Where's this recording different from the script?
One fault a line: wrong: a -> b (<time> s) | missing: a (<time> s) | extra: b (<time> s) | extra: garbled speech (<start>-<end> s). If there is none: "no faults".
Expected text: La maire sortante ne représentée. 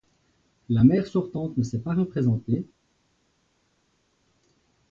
extra: s'est pas (1.6 s)